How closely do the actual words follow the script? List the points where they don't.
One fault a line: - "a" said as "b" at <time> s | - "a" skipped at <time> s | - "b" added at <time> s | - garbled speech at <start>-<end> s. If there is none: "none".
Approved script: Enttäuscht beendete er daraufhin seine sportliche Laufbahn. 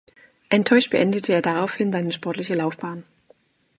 none